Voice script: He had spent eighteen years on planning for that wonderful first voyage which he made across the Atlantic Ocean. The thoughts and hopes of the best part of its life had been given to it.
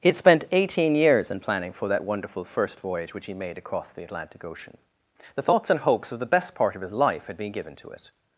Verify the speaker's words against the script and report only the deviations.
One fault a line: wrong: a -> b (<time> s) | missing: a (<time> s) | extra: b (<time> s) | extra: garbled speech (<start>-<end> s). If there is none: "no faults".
wrong: on -> in (1.3 s)
wrong: its -> his (6.8 s)